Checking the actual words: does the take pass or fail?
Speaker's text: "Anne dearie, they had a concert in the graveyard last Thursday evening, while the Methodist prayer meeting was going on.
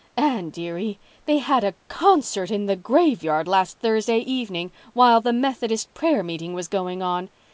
pass